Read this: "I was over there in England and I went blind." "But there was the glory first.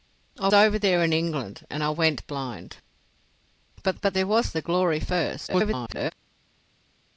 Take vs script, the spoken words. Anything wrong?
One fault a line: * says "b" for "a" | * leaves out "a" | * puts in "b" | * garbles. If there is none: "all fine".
* leaves out "was"
* puts in "but"
* garbles